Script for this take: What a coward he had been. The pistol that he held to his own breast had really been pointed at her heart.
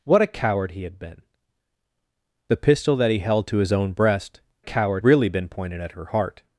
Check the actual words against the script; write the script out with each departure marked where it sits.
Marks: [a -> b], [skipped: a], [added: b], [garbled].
What a coward he had been. The pistol that he held to his own breast [had -> coward] really been pointed at her heart.